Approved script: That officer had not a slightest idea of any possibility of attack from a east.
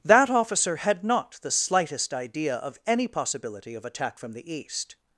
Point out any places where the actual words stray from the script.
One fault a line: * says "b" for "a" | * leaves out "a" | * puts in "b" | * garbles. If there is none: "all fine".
* says "the" for "a"
* says "the" for "a"